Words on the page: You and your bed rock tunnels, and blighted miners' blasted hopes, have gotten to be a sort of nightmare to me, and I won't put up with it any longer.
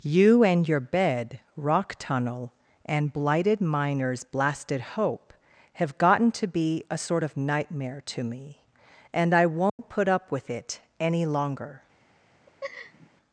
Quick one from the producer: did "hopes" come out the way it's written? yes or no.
no